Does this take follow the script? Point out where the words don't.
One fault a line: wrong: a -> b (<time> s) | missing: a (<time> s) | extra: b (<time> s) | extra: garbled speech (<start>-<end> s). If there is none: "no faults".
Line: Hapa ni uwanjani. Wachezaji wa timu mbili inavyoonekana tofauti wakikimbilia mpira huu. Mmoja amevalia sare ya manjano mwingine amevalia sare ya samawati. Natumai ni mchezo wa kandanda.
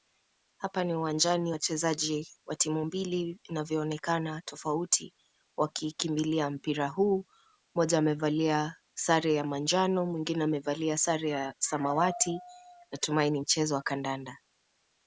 no faults